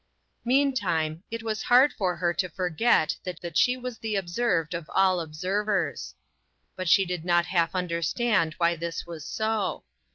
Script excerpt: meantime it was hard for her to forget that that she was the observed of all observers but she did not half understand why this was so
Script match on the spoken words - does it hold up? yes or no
yes